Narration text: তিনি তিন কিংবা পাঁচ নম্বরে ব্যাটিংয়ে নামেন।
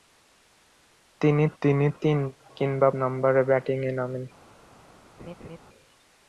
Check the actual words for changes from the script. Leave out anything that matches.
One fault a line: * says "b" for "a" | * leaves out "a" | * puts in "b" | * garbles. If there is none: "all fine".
* puts in "তিনি"
* leaves out "পাঁচ"